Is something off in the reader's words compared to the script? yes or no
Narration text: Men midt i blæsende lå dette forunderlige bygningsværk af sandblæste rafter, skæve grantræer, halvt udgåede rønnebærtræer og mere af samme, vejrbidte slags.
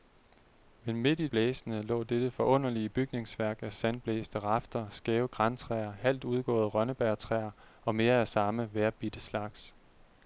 no